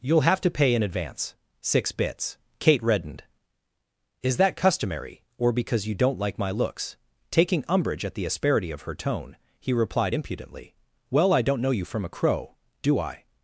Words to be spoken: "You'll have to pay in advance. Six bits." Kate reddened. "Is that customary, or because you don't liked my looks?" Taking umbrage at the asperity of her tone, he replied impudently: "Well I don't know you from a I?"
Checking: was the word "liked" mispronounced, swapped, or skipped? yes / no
yes